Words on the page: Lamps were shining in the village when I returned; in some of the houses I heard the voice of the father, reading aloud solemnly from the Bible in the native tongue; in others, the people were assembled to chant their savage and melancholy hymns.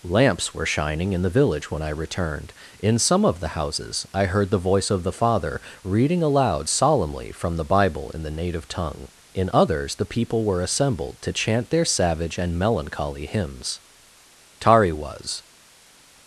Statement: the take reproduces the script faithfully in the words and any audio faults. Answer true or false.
false